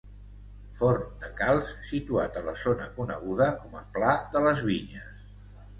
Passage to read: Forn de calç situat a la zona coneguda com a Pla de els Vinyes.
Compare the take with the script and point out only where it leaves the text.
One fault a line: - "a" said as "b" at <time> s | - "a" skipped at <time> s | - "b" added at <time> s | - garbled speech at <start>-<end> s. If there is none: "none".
- "els" said as "les" at 4.5 s